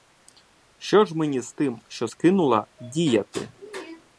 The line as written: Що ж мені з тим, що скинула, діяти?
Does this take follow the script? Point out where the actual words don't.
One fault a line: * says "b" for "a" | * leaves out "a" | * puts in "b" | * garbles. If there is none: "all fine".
all fine